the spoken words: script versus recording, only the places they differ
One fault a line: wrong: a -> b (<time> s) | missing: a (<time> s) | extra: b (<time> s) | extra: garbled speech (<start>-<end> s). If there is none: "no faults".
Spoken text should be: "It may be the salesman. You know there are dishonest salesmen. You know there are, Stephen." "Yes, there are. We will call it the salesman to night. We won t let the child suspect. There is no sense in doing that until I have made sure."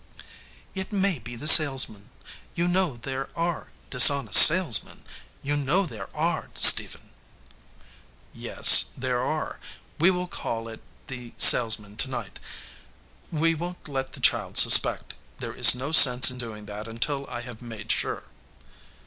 no faults